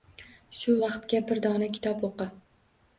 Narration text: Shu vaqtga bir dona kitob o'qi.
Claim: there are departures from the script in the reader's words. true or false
false